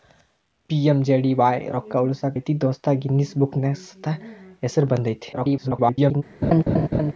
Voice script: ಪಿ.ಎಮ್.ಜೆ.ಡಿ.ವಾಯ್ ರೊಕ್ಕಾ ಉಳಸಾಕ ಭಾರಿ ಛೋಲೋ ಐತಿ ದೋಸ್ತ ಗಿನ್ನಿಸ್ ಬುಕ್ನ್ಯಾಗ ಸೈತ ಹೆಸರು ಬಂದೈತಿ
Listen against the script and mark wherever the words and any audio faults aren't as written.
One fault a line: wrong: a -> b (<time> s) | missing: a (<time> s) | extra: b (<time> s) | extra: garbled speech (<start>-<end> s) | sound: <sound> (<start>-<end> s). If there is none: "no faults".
missing: ಭಾರಿ ಛೋಲೋ (2.3 s)
extra: garbled speech (5.3-6.2 s)
sound: laugh (6.4-7.1 s)